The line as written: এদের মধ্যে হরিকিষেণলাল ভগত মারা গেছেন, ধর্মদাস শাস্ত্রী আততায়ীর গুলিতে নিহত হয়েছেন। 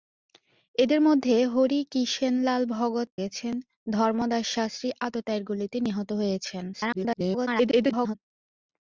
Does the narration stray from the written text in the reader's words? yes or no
yes